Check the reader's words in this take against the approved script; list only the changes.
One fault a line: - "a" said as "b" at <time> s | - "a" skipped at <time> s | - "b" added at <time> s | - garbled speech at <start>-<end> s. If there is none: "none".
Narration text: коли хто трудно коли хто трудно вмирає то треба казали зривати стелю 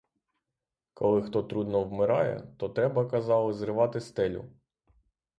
- "коли хто трудно" skipped at 1.8 s